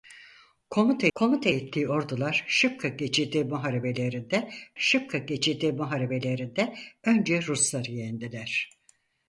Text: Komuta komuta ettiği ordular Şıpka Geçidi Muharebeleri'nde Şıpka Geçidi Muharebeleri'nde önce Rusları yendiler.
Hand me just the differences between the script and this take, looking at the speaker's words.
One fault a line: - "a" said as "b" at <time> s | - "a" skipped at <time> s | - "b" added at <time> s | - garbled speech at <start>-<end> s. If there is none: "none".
none